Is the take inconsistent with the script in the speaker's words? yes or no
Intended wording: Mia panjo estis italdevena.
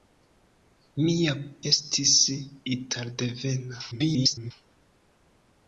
yes